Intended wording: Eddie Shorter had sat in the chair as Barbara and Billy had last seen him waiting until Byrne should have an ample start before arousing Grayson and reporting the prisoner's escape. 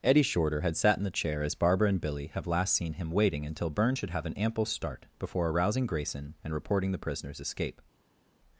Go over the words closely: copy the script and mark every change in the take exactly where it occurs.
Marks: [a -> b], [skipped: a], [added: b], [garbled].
Eddie Shorter had sat in the chair as Barbara and Billy [had -> have] last seen him waiting until Byrne should have an ample start before arousing Grayson and reporting the prisoner's escape.